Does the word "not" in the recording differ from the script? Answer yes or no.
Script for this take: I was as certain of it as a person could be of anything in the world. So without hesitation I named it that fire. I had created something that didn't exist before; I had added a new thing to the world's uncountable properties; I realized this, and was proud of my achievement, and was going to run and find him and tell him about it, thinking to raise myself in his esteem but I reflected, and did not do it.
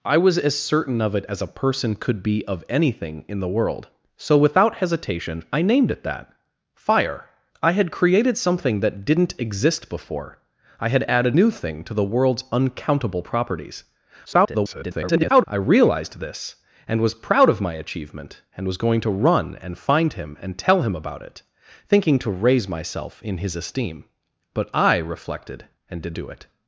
yes